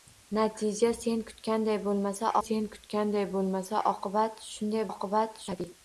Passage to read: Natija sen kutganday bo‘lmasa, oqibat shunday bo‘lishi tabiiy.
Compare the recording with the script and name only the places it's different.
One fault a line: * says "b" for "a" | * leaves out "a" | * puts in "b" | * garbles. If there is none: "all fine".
* puts in "sen kutganday bo‘lmasa"
* says "oqibat" for "bo‘lishi"